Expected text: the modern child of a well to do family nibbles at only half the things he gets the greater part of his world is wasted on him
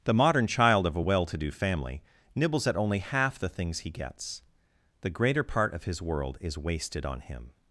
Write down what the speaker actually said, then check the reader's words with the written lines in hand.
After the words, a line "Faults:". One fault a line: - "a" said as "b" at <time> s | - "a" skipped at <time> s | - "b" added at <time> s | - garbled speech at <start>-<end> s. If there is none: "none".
the modern child of a well to do family nibbles at only half the things he gets the greater part of his world is wasted on him
Faults:
none